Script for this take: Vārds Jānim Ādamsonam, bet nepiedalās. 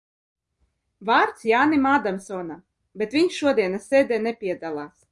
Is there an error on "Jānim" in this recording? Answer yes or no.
no